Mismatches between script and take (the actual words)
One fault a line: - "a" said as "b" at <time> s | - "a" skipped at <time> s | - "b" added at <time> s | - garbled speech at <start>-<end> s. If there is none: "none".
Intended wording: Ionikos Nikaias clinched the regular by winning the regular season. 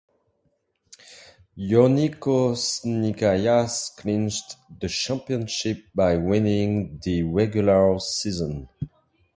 - "regular" said as "championship" at 4.9 s